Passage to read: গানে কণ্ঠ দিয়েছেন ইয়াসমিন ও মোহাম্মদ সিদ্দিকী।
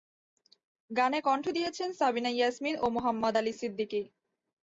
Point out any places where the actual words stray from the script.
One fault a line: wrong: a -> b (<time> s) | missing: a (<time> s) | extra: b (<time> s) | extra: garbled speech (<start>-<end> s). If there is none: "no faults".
extra: সাবিনা (1.9 s)
extra: আলী (3.4 s)